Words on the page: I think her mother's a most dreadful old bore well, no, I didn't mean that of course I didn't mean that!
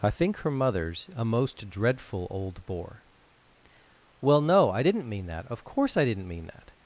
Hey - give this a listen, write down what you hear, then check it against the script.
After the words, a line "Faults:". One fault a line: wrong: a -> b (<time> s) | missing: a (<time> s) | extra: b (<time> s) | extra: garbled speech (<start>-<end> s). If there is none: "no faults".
I think her mother's a most dreadful old bore well, no, I didn't mean that of course I didn't mean that!
Faults:
no faults